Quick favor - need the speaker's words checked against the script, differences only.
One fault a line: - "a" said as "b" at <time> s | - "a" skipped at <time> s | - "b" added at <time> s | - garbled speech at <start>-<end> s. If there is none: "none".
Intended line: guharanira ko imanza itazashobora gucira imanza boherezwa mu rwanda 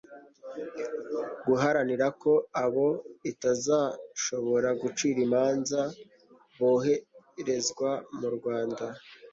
- "imanza" said as "abo" at 2.6 s